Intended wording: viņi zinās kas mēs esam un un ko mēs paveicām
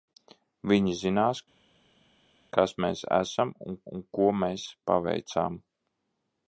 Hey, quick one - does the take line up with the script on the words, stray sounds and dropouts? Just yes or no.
yes